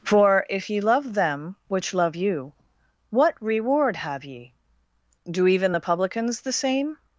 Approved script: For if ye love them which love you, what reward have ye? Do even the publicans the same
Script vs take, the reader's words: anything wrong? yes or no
no